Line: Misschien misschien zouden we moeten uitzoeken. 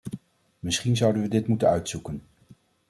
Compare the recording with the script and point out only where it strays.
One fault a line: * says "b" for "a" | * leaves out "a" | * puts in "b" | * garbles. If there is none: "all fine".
* leaves out "misschien"
* puts in "dit"